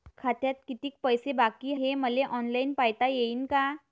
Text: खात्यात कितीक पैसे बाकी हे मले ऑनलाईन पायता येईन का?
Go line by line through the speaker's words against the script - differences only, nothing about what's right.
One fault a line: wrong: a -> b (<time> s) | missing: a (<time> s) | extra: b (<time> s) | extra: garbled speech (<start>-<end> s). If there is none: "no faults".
no faults